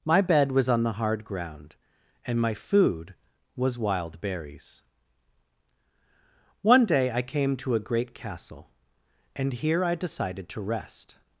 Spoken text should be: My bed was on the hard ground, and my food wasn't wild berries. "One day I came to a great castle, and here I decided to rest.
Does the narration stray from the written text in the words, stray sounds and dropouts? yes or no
yes